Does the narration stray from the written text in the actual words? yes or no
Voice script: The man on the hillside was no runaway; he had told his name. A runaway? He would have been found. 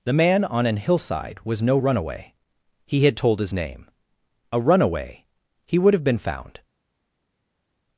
yes